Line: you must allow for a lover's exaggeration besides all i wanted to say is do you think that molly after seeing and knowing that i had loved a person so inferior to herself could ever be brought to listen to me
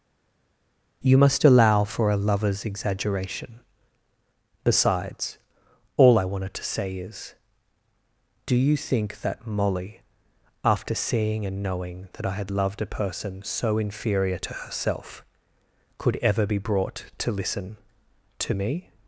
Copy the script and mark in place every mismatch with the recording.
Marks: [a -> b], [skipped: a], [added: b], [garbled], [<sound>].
you must allow for a lover's exaggeration besides all i wanted to say is do you think that molly after seeing and knowing that i had loved a person so inferior to herself could ever be brought to listen to me